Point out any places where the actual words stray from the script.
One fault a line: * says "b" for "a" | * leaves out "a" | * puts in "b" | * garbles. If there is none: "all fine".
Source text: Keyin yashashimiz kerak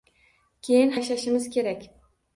all fine